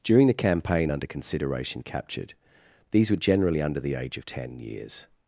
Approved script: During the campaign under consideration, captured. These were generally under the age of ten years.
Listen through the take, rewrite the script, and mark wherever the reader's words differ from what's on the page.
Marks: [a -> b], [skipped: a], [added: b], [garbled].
During the campaign under consideration, captured. These were generally under the age of ten years.